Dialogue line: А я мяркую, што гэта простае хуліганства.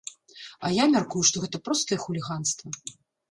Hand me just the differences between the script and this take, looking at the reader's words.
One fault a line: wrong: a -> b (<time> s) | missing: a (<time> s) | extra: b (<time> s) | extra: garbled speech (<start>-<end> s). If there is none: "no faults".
no faults